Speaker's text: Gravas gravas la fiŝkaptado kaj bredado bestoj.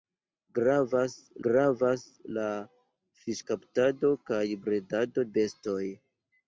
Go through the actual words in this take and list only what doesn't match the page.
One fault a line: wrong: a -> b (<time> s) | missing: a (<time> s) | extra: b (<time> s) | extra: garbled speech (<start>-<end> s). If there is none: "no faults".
no faults